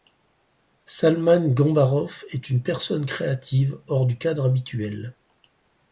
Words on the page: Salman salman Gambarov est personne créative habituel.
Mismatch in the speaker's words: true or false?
true